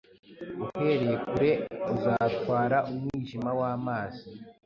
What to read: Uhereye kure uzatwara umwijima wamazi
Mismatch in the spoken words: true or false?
false